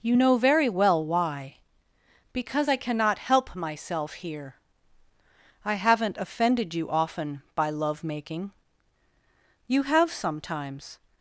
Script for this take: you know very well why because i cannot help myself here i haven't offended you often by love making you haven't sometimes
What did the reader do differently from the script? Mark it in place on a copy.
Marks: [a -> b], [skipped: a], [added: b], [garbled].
you know very well why because i cannot help myself here i haven't offended you often by love making you [haven't -> have] sometimes